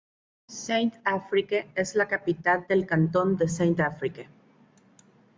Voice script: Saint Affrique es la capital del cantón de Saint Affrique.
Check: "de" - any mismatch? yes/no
no